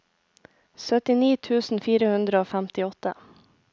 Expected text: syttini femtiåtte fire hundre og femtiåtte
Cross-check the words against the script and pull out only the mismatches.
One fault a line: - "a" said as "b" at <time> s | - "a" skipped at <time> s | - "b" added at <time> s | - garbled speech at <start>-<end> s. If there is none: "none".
- "femtiåtte" said as "tusen" at 1.5 s